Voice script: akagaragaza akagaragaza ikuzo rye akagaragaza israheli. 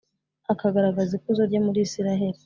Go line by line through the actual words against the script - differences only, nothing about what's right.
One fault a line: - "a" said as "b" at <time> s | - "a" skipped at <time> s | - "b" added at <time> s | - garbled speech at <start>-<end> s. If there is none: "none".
- "akagaragaza" skipped at 1.1 s
- "akagaragaza" said as "muri" at 1.7 s